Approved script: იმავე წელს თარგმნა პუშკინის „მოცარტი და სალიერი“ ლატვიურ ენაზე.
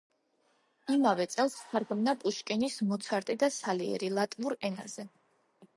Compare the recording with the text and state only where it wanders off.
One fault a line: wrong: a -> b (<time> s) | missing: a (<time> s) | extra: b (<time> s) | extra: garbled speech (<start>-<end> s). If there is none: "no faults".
no faults